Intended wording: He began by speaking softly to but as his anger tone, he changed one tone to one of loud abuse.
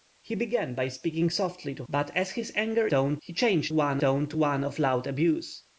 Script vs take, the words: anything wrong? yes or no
no